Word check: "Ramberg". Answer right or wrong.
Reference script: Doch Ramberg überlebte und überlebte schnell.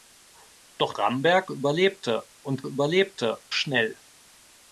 right